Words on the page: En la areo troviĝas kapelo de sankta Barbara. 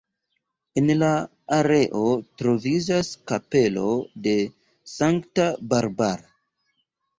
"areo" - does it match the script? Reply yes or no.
yes